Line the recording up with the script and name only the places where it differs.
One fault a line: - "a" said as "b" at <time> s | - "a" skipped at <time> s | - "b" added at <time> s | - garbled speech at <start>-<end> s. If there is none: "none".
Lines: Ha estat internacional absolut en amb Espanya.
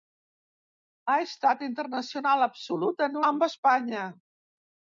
none